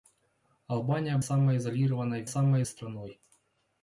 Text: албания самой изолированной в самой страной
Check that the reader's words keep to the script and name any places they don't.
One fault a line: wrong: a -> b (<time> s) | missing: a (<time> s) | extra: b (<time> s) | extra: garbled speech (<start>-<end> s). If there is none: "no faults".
no faults